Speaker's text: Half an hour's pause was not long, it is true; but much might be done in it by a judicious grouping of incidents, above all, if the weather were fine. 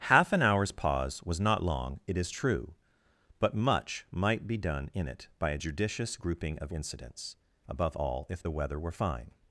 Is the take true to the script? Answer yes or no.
yes